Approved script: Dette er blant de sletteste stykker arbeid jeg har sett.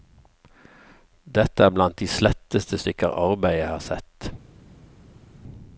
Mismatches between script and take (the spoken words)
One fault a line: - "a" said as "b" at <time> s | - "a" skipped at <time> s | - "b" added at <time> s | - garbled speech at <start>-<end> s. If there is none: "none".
none